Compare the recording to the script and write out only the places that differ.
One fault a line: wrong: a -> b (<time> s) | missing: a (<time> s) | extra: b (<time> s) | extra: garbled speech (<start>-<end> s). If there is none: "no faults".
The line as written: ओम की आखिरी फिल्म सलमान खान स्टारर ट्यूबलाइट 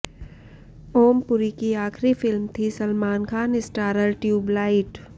extra: पुरी (1.3 s)
extra: थी (2.6 s)